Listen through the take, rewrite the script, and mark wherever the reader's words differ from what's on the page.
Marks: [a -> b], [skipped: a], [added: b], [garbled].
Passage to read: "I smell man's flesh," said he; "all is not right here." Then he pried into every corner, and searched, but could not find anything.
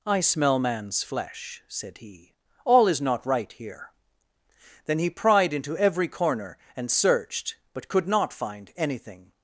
"I smell man's flesh," said he; "all is not right here." Then he pried into every corner, and searched, but could not find anything.